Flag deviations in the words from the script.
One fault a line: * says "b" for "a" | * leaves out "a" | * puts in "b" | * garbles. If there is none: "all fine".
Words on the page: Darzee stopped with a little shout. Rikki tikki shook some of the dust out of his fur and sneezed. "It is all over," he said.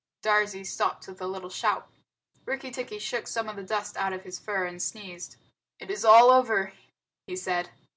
all fine